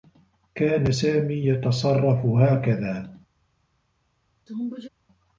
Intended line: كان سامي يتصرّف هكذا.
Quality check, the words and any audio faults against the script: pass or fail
fail